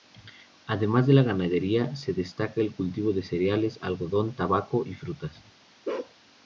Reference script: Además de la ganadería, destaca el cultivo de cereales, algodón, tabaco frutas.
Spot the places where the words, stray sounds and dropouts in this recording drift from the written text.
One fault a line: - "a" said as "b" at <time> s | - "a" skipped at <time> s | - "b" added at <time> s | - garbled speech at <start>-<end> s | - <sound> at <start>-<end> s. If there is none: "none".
- "se" added at 1.9 s
- "y" added at 4.8 s
- bark at 5.8-6.1 s